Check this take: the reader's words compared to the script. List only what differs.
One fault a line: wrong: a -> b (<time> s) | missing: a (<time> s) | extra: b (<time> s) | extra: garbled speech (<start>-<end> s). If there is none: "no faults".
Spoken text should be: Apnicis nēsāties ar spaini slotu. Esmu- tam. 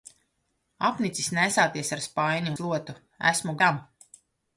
no faults